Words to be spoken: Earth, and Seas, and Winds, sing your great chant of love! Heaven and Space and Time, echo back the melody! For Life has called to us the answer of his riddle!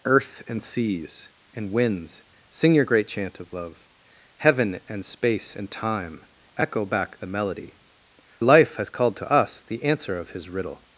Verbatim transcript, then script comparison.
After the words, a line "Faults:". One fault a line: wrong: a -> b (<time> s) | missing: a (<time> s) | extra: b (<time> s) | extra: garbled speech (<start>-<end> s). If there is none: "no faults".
Earth, and Seas, and Winds, sing your great chant of love! Heaven and Space and Time, echo back the melody! Life has called to us the answer of his riddle!
Faults:
missing: For (7.7 s)